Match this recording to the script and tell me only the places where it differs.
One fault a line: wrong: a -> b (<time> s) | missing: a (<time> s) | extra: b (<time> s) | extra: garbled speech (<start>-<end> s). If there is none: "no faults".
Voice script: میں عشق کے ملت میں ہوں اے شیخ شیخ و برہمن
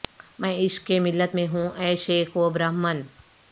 missing: شیخ (2.4 s)